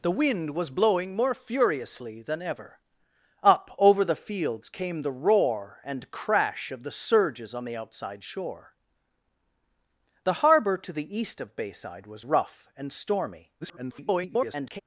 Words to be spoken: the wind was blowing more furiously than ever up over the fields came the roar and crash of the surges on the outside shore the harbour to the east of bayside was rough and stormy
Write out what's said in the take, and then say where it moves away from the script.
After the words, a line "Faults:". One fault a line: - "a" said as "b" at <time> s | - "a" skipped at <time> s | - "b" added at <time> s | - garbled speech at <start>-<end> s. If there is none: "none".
the wind was blowing more furiously than ever up over the fields came the roar and crash of the surges on the outside shore the harbour to the east of bayside was rough and stormy [garbled]
Faults:
- garbled speech at 13.6-14.8 s